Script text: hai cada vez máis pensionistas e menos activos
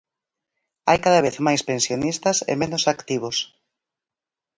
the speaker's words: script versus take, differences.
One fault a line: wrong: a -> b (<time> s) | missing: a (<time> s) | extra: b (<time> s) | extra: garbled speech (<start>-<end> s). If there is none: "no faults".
no faults